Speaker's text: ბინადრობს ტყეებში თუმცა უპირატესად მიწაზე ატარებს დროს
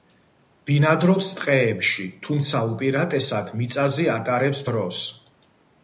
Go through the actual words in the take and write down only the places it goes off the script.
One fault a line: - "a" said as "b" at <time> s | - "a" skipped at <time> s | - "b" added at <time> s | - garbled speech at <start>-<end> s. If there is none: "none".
none